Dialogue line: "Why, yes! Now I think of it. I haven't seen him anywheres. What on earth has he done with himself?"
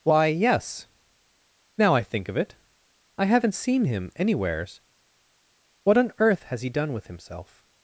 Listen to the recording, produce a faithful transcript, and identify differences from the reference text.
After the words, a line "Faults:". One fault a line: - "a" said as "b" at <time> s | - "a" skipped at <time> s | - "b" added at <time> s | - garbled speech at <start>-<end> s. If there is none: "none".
"Why, yes! Now I think of it. I haven't seen him anywheres. What on earth has he done with himself?"
Faults:
none